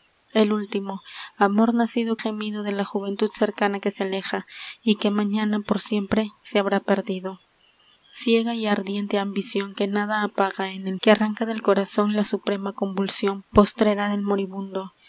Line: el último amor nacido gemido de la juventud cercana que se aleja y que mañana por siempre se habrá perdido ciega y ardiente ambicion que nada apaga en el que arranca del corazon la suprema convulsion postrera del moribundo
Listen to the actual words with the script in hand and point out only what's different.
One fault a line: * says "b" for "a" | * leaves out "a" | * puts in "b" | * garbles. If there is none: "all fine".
all fine